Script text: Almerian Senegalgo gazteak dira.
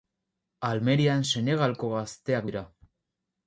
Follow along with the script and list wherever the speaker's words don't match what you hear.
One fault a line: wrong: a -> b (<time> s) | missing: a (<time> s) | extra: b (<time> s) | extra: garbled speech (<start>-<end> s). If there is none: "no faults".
no faults